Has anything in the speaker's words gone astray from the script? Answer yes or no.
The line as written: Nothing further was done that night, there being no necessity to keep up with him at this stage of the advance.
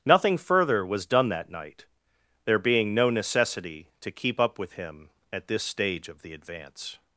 no